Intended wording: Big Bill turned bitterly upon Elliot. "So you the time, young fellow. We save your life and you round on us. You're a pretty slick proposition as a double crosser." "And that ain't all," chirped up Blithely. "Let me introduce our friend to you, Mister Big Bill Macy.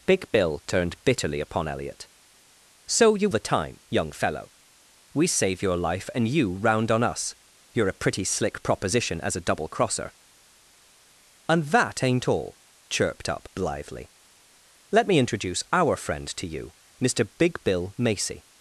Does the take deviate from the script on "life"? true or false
false